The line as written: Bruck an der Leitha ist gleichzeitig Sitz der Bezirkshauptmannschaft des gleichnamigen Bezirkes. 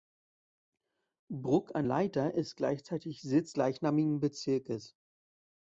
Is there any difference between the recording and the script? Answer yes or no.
yes